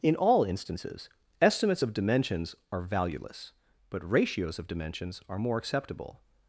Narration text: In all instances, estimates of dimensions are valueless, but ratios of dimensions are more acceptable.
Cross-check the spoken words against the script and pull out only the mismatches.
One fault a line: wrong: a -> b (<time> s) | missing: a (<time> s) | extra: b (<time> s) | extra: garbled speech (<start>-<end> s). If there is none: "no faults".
no faults